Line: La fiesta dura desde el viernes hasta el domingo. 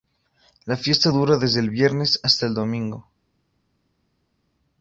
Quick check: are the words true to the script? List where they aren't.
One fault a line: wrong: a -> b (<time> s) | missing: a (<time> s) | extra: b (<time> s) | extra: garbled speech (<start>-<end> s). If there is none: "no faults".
no faults